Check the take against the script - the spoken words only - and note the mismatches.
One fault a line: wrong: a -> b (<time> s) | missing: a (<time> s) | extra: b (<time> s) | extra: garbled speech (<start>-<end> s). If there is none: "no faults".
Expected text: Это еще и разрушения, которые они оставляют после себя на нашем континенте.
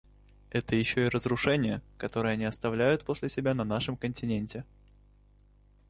no faults